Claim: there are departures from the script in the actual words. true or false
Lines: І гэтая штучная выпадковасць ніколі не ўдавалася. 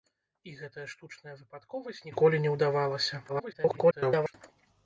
true